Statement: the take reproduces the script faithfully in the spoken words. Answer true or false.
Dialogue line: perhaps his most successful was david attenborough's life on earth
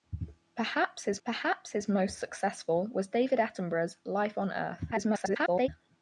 false